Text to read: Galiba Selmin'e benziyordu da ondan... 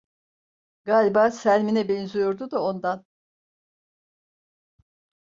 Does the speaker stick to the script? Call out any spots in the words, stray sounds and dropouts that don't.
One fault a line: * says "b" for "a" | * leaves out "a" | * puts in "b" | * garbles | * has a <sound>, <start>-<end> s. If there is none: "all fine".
all fine